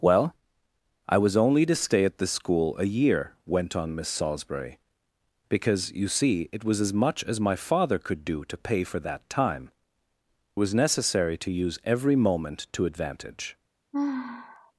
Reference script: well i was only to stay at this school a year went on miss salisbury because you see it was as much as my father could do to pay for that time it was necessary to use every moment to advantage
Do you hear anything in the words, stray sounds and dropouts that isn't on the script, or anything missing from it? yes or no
yes